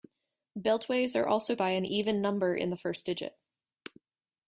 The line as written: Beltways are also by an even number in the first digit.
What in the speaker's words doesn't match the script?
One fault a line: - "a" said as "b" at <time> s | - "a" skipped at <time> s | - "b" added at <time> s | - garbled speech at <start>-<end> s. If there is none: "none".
none